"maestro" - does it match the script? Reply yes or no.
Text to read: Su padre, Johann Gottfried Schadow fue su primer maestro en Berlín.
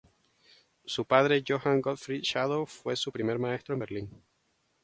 yes